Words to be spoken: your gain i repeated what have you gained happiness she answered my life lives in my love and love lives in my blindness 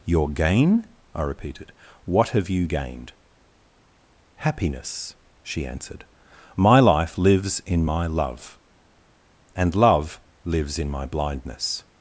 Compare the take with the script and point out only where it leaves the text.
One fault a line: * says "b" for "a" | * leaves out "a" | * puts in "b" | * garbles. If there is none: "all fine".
all fine